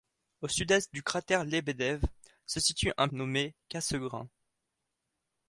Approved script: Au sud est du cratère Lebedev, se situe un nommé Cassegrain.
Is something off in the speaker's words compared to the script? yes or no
no